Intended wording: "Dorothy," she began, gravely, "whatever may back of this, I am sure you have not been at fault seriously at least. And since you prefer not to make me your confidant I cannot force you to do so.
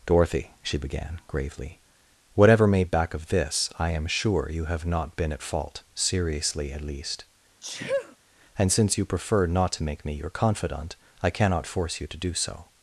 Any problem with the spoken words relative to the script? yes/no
no